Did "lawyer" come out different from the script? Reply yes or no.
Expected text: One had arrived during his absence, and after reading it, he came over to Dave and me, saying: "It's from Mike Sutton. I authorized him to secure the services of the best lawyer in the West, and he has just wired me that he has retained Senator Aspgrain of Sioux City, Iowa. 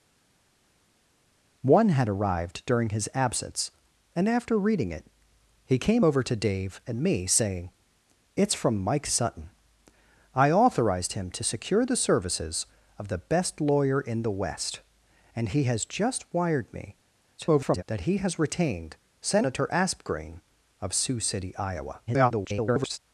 no